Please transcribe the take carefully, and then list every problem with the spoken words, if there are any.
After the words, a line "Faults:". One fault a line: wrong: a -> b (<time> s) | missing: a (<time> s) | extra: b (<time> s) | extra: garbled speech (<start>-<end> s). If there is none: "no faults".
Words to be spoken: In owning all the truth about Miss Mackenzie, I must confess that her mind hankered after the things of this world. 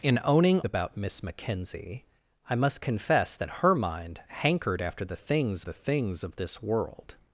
In owning about Miss Mackenzie, I must confess that her mind hankered after the things the things of this world.
Faults:
missing: all the truth (0.6 s)
extra: the things (5.6 s)